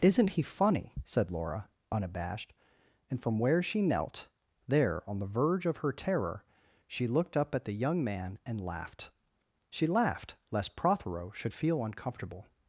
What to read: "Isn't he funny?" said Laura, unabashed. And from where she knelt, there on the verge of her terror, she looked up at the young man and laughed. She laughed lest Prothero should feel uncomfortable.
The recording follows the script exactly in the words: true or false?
true